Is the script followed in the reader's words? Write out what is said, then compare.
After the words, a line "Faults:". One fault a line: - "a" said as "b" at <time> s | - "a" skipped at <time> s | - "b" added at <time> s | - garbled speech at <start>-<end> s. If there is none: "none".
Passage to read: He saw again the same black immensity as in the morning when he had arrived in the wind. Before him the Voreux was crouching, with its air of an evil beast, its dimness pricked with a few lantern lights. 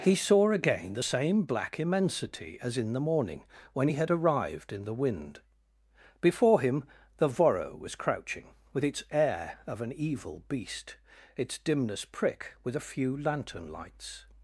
He saw again the same black immensity as in the morning when he had arrived in the wind. Before him the Voreux was crouching, with its air of an evil beast, its dimness prick with a few lantern lights.
Faults:
- "pricked" said as "prick" at 12.0 s